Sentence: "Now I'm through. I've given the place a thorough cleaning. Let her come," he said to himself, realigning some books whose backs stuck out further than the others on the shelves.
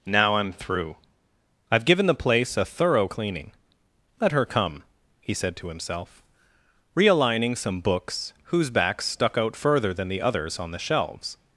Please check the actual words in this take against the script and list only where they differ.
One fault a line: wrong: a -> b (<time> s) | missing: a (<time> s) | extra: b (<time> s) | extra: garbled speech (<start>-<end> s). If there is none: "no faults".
no faults